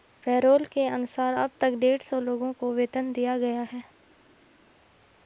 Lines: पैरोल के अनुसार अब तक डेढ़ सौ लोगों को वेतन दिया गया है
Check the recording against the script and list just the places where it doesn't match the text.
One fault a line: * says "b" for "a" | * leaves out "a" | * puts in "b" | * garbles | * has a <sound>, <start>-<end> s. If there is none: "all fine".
all fine